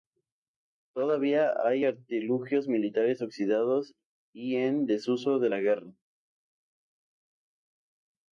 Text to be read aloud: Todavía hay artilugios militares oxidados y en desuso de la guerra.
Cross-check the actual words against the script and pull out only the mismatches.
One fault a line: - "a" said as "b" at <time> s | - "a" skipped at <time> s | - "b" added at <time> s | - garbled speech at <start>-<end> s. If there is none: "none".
none